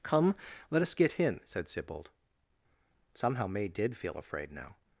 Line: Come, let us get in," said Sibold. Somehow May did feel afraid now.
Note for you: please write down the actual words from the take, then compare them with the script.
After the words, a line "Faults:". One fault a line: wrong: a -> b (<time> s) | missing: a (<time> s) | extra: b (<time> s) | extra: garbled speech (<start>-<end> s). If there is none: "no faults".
Come, let us get in," said Sibold. Somehow May did feel afraid now.
Faults:
no faults